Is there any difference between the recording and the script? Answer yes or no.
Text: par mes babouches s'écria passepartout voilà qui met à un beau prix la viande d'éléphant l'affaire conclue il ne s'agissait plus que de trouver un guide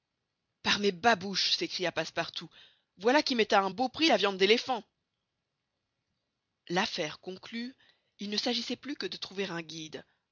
no